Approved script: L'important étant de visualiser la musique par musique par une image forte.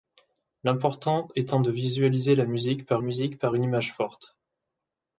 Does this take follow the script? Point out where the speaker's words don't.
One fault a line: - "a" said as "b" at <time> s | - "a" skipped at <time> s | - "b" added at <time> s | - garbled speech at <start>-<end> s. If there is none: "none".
none